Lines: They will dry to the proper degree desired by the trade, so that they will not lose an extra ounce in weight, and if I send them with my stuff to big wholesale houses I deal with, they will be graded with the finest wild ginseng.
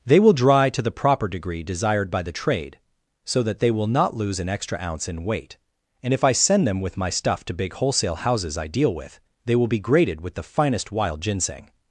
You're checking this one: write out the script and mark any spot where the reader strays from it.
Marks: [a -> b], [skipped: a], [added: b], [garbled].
They will dry to the proper degree desired by the trade, so that they will not lose an extra ounce in weight, and if I send them with my stuff to big wholesale houses I deal with, they will be graded with the finest wild ginseng.